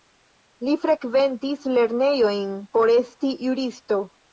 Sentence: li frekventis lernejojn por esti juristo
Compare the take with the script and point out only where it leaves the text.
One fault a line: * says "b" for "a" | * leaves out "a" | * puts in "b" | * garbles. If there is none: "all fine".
all fine